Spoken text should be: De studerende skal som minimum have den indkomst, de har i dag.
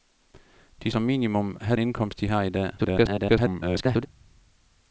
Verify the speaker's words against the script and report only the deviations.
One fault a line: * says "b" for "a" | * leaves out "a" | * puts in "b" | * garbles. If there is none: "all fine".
* leaves out "studerende skal"
* leaves out "den"
* garbles